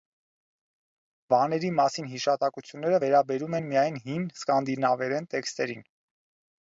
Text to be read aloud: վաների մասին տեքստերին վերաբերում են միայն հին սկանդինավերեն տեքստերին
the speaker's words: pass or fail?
fail